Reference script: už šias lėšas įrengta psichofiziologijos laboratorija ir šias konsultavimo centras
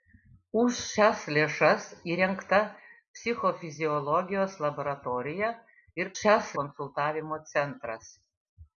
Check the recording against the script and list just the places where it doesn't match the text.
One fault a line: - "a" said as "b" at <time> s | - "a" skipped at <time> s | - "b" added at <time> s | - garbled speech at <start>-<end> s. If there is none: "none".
none